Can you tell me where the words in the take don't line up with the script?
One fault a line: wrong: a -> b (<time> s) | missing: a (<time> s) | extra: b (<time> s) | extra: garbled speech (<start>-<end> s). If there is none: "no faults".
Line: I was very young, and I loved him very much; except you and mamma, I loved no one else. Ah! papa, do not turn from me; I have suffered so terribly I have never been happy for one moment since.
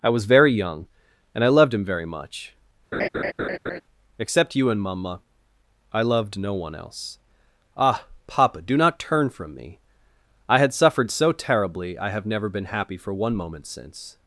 wrong: have -> had (10.6 s)